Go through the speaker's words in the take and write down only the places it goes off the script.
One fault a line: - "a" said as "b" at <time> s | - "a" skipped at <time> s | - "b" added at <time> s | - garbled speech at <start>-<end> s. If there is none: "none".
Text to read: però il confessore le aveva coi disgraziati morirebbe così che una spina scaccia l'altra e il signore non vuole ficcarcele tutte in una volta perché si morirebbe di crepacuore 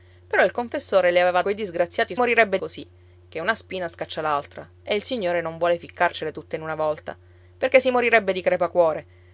none